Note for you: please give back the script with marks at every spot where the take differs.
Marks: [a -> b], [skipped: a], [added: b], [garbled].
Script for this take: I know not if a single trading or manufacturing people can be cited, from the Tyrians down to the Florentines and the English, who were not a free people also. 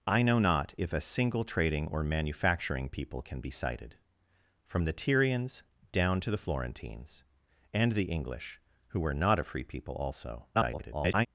I know not if a single trading or manufacturing people can be cited, from the Tyrians down to the Florentines and the English, who were not a free people also. [garbled]